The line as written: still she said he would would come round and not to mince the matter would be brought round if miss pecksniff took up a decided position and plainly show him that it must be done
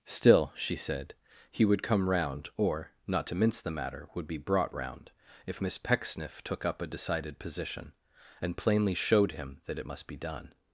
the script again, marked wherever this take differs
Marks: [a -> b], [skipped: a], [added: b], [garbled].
still she said he would [skipped: would] come round [and -> or] not to mince the matter would be brought round if miss pecksniff took up a decided position and plainly [show -> showed] him that it must be done